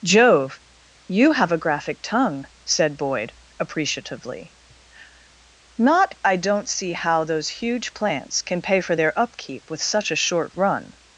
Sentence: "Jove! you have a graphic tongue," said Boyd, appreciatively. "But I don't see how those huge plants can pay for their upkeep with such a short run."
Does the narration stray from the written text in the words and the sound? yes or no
yes